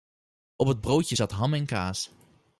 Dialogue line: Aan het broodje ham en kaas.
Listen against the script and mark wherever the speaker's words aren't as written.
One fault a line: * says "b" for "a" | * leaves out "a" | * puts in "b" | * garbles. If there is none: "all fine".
* says "Op" for "Aan"
* puts in "zat"